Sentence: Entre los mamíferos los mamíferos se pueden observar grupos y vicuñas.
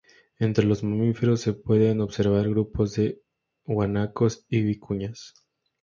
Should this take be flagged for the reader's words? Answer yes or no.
yes